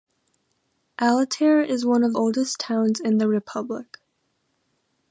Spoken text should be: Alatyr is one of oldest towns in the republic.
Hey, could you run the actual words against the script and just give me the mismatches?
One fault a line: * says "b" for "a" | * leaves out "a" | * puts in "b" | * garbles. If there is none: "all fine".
all fine